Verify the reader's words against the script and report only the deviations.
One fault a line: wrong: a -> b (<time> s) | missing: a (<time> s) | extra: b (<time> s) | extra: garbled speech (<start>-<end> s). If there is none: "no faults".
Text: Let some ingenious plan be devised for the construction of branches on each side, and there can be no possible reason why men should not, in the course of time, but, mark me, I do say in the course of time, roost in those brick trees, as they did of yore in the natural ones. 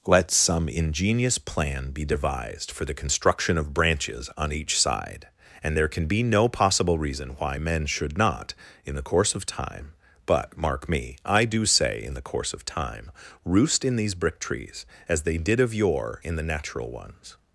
wrong: those -> these (14.0 s)